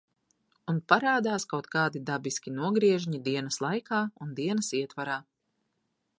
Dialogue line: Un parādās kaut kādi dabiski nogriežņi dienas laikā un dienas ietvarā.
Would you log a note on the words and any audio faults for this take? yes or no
no